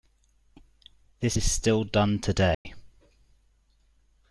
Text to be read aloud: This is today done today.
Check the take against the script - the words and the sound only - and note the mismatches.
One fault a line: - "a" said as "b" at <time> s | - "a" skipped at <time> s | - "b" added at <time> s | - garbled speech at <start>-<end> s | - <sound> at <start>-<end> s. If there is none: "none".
- "today" said as "still" at 1.5 s
- dropout at 2.5-2.7 s